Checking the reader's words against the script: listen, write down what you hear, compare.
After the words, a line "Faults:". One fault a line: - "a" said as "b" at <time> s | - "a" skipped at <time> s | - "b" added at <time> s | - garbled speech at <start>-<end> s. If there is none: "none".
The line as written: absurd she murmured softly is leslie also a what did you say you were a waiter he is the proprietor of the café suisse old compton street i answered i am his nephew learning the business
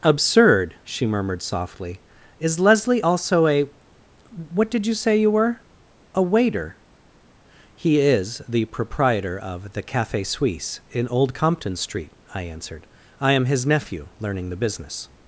absurd she murmured softly is leslie also a what did you say you were a waiter he is the proprietor of the café suisse in old compton street i answered i am his nephew learning the business
Faults:
- "in" added at 10.9 s